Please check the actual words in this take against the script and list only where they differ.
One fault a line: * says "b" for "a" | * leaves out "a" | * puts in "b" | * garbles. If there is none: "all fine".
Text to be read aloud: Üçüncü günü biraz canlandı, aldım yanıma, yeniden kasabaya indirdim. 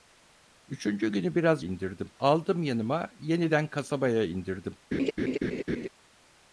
* says "indirdim" for "canlandı"